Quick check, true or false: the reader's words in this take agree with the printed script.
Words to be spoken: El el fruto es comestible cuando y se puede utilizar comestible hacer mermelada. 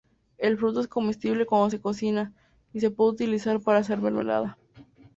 false